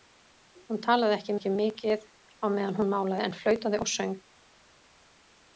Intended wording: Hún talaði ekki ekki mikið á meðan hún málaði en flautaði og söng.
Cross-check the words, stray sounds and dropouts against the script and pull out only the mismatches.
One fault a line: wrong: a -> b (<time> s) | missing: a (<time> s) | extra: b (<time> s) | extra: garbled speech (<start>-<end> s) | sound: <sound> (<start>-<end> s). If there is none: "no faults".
no faults